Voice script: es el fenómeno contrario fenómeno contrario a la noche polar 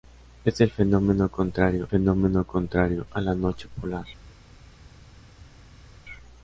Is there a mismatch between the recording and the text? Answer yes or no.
no